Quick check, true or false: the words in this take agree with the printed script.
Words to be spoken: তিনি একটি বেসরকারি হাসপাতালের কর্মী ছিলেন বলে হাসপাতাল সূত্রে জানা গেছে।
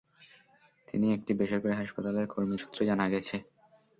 false